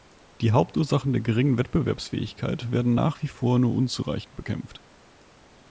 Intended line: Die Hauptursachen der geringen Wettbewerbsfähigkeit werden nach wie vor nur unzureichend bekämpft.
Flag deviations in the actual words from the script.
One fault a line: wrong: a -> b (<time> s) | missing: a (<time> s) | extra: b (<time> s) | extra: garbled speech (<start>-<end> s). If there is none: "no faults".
no faults